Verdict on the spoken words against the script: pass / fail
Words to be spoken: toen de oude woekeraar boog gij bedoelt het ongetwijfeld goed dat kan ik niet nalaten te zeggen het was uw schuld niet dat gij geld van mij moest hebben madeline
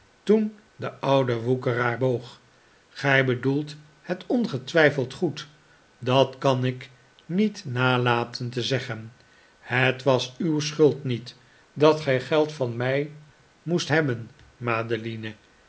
pass